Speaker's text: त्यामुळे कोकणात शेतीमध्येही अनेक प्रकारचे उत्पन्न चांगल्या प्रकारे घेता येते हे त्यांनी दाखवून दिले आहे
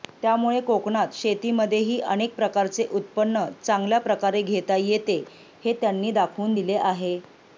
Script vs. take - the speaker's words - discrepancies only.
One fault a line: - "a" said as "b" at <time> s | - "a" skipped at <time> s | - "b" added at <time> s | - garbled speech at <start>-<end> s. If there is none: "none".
none